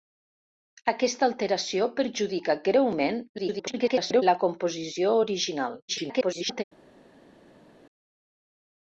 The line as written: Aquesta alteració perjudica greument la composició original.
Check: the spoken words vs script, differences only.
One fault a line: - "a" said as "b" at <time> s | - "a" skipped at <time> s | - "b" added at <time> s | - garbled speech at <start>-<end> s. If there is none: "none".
- garbled speech at 3.4-4.2 s
- garbled speech at 5.9-6.6 s